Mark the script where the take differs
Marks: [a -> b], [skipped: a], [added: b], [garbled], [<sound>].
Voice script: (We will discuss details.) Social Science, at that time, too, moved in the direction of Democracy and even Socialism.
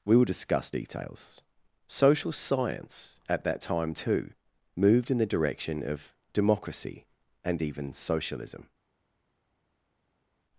(We will discuss details.) Social Science, at that time, too, moved in the direction of Democracy and even Socialism.